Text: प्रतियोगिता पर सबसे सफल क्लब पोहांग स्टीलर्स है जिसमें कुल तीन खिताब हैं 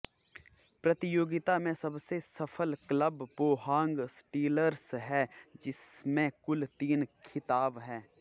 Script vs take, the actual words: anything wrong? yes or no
yes